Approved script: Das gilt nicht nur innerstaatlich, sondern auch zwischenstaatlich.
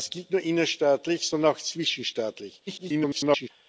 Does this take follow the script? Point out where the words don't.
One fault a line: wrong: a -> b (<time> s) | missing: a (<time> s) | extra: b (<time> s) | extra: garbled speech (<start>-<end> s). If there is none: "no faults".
missing: nicht (0.3 s)
extra: garbled speech (2.7-3.5 s)